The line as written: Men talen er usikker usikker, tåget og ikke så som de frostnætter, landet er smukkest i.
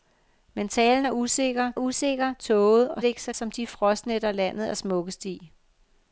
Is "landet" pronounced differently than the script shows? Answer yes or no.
no